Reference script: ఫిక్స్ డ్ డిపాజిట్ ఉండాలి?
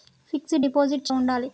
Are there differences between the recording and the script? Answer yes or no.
no